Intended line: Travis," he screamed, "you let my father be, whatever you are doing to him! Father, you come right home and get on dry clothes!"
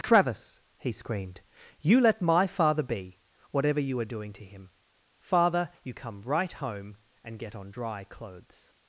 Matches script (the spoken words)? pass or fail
pass